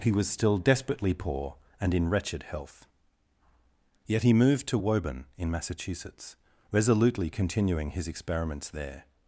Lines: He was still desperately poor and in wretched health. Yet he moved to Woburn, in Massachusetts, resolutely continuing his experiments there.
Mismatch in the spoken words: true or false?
false